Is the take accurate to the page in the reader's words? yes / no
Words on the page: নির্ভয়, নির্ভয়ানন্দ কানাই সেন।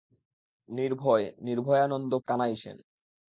yes